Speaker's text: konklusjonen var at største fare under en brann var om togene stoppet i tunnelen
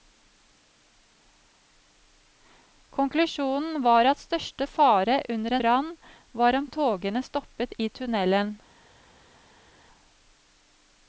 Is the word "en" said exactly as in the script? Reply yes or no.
no